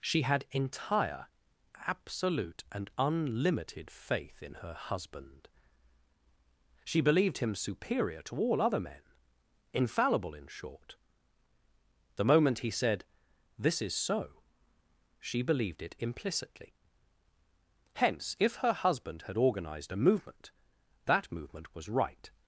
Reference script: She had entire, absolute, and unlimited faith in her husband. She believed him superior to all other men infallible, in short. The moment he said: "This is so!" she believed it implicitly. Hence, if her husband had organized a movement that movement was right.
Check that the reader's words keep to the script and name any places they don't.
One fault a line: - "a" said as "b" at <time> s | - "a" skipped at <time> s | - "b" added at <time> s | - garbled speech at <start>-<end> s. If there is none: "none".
none